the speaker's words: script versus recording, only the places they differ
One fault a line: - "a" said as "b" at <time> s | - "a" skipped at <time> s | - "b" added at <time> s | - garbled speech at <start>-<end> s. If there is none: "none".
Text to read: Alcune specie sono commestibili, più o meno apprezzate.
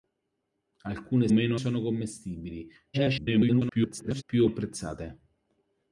- "specie" said as "meno" at 1.3 s
- garbled speech at 2.9-4.2 s
- "meno" skipped at 4.5 s